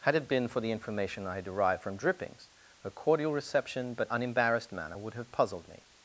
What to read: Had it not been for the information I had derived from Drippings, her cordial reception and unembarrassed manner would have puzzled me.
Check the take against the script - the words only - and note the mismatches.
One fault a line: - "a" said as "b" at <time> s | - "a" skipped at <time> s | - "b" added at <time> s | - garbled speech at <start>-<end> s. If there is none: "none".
- "not" skipped at 0.3 s
- "and" said as "but" at 3.9 s